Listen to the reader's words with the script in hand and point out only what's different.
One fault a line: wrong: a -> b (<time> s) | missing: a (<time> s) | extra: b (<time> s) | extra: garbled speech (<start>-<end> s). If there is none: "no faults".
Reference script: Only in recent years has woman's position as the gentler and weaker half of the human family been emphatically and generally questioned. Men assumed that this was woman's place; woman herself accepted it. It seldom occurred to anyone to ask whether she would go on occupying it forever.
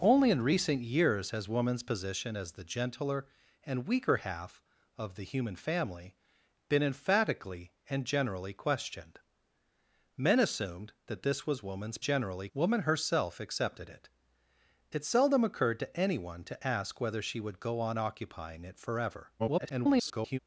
wrong: place -> generally (12.0 s)
extra: garbled speech (19.4-20.4 s)